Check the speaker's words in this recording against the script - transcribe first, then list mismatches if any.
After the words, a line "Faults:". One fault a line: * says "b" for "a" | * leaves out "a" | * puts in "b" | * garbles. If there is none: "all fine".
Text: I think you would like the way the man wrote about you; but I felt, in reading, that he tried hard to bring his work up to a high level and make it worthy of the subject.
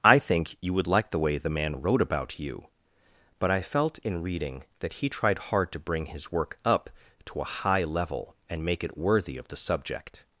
I think you would like the way the man wrote about you; but I felt, in reading, that he tried hard to bring his work up to a high level and make it worthy of the subject.
Faults:
all fine